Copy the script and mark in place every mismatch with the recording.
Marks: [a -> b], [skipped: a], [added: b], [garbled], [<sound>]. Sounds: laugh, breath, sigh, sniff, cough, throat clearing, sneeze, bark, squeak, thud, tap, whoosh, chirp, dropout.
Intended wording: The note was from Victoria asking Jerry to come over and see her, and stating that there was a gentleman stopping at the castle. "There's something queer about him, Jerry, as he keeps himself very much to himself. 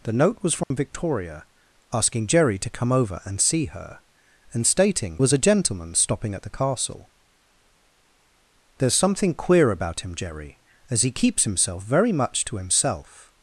The note was from [dropout] Victoria asking Jerry to come over and see her, and stating [skipped: that there] was a gentleman stopping at the castle. "There's something queer about him, Jerry, as he keeps himself very much to himself.